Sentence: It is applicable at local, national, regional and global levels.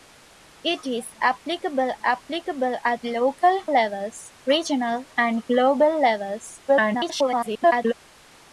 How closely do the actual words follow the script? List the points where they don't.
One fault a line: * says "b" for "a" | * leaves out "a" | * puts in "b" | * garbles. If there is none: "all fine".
* puts in "applicable"
* says "levels" for "national"
* garbles